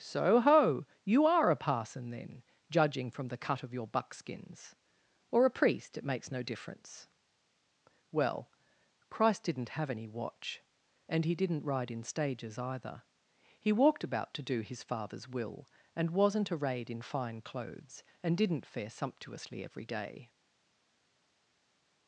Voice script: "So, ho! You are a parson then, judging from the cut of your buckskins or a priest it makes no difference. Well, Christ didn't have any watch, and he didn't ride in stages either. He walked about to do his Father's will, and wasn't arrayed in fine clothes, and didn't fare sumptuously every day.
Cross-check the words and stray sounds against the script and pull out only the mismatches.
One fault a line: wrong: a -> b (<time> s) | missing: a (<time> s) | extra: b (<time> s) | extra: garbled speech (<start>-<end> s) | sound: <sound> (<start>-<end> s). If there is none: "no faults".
no faults